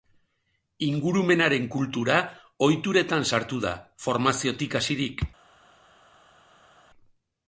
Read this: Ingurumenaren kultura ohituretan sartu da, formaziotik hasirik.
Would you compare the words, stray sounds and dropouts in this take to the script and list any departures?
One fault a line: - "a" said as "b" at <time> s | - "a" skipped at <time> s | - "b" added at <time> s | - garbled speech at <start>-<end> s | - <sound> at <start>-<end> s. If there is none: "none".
none